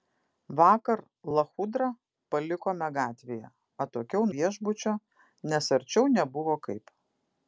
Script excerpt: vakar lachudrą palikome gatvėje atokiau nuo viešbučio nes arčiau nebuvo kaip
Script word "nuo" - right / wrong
wrong